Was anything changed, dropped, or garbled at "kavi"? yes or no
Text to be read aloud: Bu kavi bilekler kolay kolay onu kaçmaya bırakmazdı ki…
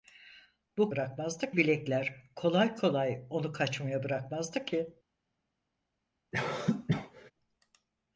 yes